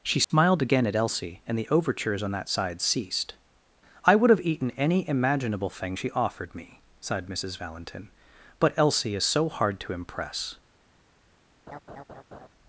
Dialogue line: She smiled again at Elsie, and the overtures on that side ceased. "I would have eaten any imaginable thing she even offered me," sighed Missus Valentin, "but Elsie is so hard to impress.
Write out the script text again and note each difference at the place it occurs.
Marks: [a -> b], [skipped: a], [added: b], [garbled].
She smiled again at Elsie, and the overtures on that side ceased. "I would have eaten any imaginable thing she [skipped: even] offered me," sighed Missus Valentin, "but Elsie is so hard to impress.